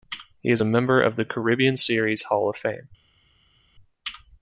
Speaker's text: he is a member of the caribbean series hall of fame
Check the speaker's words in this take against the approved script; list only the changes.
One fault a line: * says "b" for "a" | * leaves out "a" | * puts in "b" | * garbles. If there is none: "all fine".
all fine